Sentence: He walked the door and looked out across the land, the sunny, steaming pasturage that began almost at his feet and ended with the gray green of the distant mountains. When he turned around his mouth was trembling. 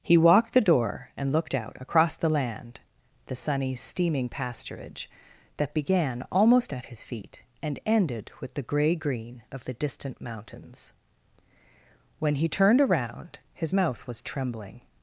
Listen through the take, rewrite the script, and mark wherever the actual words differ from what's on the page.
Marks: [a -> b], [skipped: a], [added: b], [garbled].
He walked the door and looked out across the land, the sunny, steaming pasturage that began almost at his feet and ended with the gray green of the distant mountains. When he turned around his mouth was trembling.